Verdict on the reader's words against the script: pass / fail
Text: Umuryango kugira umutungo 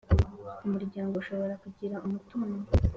fail